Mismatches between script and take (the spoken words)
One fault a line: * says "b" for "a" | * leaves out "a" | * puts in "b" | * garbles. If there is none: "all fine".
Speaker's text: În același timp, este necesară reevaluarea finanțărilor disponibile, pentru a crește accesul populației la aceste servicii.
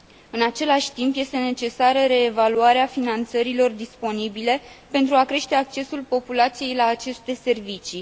all fine